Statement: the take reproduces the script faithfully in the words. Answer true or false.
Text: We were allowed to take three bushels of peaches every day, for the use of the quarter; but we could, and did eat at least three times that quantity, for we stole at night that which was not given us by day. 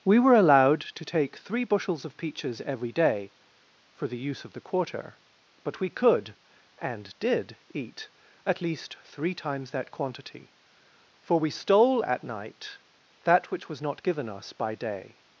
true